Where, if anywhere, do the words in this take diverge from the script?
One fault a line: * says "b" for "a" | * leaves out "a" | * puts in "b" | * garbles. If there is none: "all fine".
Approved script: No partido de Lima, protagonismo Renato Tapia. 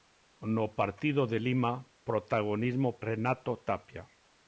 all fine